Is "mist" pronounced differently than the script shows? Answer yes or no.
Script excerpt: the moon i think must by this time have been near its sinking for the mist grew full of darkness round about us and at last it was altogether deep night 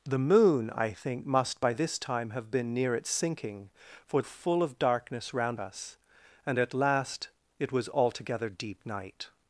yes